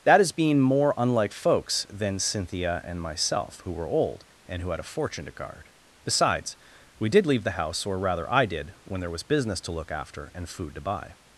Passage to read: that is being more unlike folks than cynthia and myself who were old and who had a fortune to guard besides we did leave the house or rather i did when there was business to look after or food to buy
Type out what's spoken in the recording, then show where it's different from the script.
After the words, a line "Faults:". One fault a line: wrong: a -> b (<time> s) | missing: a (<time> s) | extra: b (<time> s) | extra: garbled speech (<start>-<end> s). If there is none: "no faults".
that is being more unlike folks than cynthia and myself who were old and who had a fortune to guard besides we did leave the house or rather i did when there was business to look after and food to buy
Faults:
wrong: or -> and (10.3 s)